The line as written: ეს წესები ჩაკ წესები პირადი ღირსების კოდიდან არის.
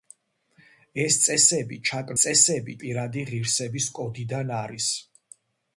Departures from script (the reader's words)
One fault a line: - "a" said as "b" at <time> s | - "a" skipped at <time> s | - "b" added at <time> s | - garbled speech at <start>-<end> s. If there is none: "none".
none